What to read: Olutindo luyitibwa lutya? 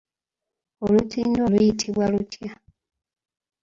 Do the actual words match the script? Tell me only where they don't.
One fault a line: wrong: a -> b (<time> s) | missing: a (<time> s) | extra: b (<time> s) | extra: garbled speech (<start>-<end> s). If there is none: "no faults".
no faults